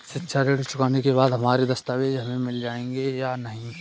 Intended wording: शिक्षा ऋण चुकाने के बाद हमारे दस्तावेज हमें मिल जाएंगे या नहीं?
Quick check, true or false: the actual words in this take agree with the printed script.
true